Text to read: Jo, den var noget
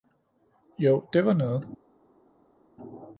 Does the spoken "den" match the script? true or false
false